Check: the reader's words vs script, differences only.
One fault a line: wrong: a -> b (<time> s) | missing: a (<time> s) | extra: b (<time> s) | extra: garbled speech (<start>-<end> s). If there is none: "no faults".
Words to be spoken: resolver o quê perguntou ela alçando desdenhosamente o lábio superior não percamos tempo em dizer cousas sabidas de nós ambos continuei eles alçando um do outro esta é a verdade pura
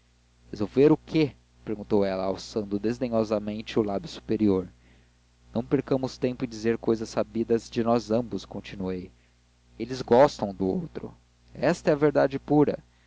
wrong: alçando -> gostam (10.0 s)